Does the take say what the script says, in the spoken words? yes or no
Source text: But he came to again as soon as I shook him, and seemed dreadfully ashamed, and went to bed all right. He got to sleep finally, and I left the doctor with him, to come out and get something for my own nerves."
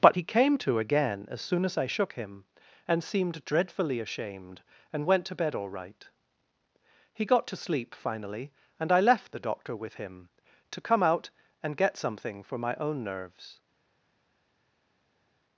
yes